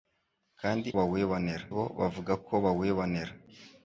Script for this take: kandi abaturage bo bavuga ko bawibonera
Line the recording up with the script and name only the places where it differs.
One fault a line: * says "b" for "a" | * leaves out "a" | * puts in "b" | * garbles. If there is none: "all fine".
* says "bawibonera" for "abaturage"